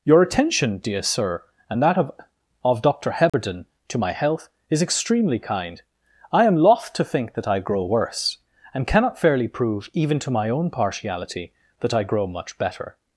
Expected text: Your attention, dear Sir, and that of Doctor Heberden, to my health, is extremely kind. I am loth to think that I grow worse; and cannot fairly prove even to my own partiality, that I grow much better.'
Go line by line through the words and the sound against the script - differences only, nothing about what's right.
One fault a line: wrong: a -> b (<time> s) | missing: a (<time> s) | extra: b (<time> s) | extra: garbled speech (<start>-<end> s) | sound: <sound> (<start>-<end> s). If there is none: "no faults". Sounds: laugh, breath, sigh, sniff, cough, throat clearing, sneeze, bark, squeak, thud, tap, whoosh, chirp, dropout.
extra: of (2.6 s)
sound: dropout (3.3-3.3 s)